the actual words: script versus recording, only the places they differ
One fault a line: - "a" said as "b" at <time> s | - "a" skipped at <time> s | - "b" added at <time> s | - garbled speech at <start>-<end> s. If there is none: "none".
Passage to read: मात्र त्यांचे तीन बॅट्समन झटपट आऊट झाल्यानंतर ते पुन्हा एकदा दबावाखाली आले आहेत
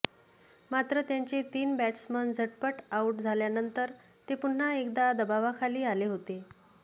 - "आहेत" said as "होते" at 6.0 s